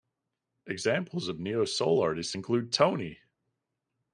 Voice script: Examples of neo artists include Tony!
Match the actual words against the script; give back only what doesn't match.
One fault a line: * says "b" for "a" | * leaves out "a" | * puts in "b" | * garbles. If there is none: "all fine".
* puts in "soul"